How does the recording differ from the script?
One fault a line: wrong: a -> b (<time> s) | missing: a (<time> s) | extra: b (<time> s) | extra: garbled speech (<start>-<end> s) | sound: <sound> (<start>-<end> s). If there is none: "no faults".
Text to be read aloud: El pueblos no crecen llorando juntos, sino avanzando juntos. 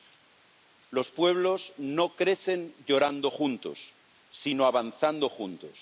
wrong: El -> Los (0.9 s)